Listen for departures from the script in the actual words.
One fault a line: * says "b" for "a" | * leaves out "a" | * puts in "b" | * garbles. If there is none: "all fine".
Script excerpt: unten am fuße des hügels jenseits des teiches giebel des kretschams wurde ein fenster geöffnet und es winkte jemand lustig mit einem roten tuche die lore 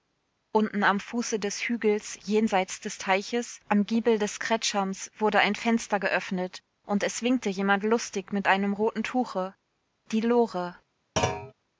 * puts in "am"